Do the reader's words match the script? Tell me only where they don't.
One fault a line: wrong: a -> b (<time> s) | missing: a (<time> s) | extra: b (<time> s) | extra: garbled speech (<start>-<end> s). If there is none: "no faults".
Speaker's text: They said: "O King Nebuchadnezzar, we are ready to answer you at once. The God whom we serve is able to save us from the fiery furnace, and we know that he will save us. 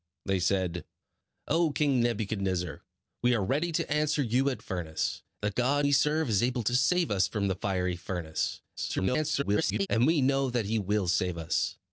wrong: once -> furnace (4.6 s)
missing: whom (5.9 s)
extra: garbled speech (8.8-9.9 s)